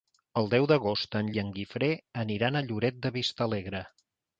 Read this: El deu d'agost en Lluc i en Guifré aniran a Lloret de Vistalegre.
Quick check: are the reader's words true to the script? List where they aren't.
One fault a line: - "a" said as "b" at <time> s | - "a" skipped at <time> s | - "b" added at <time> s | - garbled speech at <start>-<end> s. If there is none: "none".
- "Lluc" skipped at 1.3 s